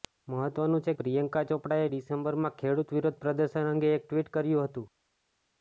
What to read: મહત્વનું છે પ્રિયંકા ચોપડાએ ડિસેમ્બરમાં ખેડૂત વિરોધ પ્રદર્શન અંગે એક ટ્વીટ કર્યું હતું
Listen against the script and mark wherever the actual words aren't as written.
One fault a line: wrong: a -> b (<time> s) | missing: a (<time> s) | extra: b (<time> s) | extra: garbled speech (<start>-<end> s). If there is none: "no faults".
no faults